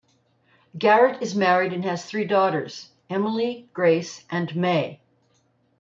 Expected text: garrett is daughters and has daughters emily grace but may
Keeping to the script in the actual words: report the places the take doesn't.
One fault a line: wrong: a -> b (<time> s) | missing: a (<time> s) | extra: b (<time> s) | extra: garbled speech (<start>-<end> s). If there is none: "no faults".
wrong: daughters -> married (1.3 s)
extra: three (2.0 s)
wrong: but -> and (4.3 s)